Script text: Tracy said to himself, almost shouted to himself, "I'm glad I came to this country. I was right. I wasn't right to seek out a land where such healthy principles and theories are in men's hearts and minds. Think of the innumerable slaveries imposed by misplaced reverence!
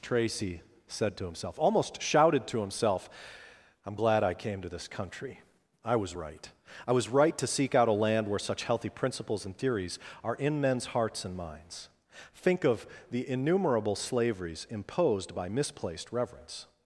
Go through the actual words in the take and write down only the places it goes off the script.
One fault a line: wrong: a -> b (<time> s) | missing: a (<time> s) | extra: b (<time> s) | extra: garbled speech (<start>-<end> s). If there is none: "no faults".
wrong: wasn't -> was (6.9 s)